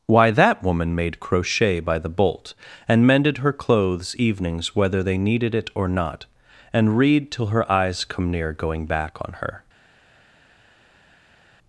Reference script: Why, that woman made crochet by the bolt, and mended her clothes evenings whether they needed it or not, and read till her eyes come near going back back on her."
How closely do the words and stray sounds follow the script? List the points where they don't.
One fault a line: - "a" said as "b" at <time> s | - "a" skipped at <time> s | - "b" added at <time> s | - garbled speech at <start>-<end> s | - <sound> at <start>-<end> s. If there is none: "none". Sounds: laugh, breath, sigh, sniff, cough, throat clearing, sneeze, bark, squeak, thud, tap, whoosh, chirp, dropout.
- "back" skipped at 9.2 s